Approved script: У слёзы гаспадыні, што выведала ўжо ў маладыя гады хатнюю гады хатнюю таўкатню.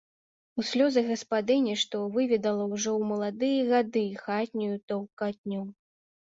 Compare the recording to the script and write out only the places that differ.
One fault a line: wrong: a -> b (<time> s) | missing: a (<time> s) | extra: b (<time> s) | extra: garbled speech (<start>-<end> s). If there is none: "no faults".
missing: гады хатнюю (4.8 s)